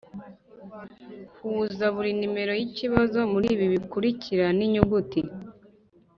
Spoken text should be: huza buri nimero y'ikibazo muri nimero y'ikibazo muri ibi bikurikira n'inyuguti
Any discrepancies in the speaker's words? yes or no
yes